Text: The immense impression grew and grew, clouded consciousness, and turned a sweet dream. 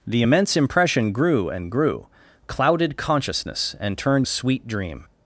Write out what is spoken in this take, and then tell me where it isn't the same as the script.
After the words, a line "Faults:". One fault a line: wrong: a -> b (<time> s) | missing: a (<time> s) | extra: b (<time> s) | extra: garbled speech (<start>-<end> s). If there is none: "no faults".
The immense impression grew and grew, clouded consciousness, and turned a sweet dream.
Faults:
no faults